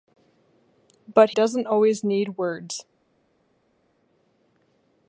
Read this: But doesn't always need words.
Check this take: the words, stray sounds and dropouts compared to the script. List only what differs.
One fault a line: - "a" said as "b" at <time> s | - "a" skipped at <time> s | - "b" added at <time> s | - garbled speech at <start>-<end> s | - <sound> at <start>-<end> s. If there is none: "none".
none